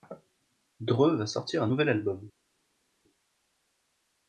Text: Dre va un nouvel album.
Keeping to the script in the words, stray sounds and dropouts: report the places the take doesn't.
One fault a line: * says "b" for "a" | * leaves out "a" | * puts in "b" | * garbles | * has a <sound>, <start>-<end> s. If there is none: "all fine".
* puts in "sortir"